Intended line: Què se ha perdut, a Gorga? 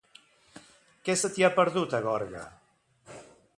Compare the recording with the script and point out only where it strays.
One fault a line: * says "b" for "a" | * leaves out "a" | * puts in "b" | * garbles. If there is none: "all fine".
* puts in "t'hi"